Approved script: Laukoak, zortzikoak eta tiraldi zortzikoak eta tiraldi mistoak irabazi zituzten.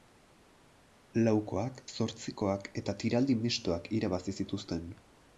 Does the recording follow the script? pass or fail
fail